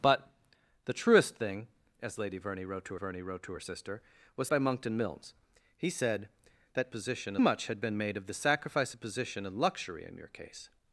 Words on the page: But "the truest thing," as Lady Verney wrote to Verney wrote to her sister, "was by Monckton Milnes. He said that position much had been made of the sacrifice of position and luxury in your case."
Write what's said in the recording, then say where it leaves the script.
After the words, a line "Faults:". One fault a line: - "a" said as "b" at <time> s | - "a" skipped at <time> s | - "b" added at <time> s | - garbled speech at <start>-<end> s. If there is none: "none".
But "the truest thing," as Lady Verney wrote to Verney wrote to her sister, "was by Monckton Milnes. He said that position much had been made of the sacrifice of position and luxury in your case."
Faults:
none